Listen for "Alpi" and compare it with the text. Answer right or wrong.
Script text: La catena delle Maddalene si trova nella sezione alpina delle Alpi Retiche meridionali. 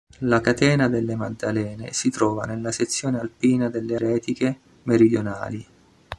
wrong